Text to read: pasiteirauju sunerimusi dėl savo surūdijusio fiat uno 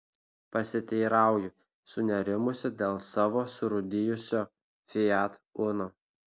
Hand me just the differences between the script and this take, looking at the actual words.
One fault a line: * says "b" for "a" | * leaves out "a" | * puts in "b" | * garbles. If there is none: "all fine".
all fine